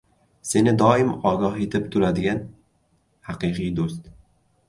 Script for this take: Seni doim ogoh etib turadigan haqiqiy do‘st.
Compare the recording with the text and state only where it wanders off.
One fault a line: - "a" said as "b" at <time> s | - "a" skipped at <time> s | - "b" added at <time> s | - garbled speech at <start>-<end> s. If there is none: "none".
none